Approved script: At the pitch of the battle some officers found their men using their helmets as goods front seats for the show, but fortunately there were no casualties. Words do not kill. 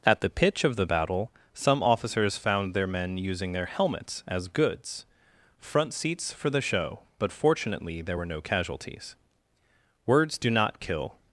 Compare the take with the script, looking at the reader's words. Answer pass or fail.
pass